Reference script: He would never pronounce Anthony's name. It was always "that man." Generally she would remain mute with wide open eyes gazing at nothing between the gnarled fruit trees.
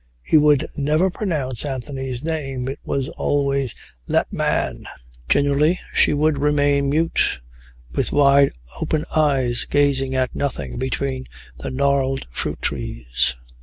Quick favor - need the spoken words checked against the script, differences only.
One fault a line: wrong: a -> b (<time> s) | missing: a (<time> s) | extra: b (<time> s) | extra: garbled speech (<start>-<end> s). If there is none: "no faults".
no faults